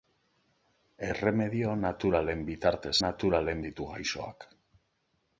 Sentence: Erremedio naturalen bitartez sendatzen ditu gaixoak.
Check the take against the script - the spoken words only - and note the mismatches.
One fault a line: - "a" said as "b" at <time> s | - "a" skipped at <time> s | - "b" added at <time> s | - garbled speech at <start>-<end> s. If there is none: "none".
- "sendatzen" said as "naturalen" at 3.0 s